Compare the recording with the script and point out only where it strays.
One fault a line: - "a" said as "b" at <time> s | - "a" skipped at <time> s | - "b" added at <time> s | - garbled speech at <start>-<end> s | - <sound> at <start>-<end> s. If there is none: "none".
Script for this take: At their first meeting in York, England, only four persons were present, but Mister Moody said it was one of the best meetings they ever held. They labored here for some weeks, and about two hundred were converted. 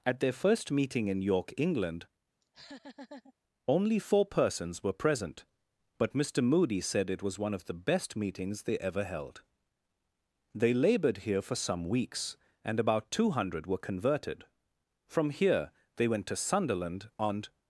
- laugh at 2.4-3.3 s
- "From here they went to Sunderland and" added at 15.1 s